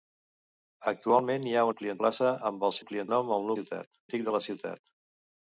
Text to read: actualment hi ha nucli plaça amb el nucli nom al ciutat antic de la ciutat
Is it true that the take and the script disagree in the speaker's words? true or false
false